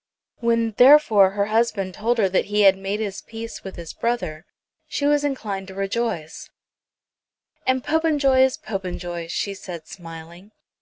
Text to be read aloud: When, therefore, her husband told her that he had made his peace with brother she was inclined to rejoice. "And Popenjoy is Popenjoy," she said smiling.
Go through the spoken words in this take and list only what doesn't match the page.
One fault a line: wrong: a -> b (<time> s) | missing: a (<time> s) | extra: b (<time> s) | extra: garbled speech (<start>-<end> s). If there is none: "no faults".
extra: his (3.8 s)